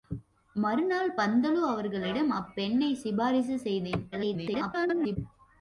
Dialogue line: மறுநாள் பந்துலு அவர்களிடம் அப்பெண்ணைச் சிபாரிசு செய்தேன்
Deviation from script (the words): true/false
true